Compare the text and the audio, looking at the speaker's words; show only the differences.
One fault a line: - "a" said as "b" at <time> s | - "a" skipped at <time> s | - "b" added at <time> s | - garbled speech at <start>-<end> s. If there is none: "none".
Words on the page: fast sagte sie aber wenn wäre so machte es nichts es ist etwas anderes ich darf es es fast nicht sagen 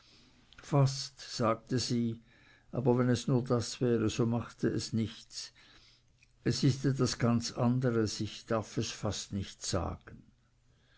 - "es nur das" added at 3.1 s
- "ganz" added at 7.2 s
- "es" skipped at 8.9 s